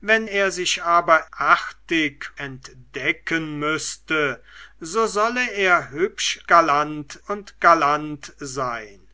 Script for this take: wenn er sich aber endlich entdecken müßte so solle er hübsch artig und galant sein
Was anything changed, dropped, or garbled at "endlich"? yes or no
yes